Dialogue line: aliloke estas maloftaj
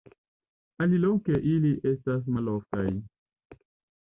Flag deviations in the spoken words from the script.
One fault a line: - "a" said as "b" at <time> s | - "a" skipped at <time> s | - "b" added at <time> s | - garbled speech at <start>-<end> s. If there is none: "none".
- "ili" added at 1.5 s